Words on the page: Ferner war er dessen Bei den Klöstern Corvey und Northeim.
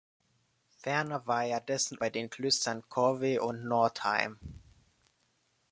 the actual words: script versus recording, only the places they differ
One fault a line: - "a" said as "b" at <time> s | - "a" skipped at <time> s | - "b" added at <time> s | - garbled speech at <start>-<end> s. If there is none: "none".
none